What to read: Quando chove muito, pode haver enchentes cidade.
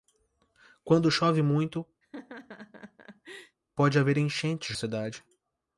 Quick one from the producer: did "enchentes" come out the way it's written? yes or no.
yes